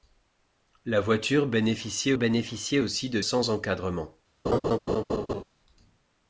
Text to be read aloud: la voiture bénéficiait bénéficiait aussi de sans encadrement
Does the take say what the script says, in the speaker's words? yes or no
yes